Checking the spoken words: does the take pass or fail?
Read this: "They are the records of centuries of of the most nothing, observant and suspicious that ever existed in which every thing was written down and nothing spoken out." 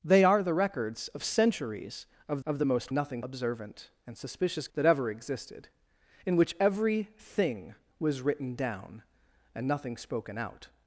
pass